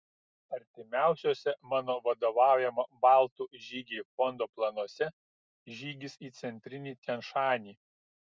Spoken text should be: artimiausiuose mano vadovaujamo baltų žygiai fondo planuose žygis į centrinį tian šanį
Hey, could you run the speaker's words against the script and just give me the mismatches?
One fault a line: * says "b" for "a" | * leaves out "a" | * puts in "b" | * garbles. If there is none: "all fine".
all fine